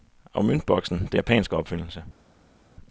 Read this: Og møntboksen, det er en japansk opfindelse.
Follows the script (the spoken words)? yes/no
no